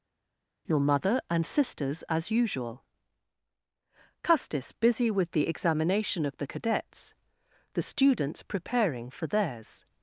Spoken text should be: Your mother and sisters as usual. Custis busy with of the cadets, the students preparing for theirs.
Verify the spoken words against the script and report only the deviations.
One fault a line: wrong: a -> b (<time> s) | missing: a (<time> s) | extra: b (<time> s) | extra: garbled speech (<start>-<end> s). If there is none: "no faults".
extra: the examination (5.3 s)